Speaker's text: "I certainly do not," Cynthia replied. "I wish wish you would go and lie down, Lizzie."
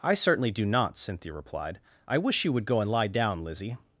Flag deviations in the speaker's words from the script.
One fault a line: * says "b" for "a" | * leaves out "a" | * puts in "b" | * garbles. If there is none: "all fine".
* leaves out "wish"